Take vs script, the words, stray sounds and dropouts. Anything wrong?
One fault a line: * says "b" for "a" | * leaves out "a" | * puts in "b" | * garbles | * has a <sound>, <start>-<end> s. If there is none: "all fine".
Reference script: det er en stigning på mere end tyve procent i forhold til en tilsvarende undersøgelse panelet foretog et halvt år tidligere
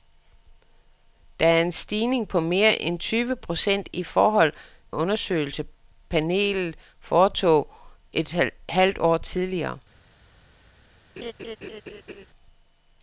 * leaves out "til en tilsvarende"
* has a laugh, 11.2-12.3 s